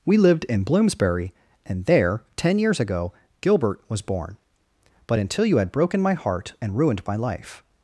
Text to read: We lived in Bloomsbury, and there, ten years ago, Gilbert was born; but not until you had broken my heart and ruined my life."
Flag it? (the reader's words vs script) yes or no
yes